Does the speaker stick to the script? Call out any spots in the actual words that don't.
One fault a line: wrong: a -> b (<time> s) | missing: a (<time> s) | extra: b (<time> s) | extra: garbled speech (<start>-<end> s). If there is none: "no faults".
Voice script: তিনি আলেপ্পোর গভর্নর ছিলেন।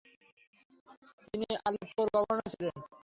no faults